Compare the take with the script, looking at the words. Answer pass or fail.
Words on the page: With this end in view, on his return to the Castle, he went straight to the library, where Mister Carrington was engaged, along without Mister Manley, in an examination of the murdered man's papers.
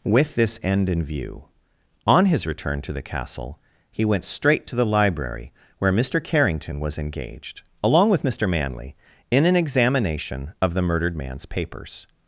fail